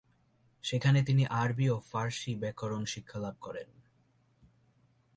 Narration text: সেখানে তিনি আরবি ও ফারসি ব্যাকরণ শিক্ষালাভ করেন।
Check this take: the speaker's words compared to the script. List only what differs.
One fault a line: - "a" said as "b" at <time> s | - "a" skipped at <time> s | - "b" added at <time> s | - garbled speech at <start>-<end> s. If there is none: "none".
none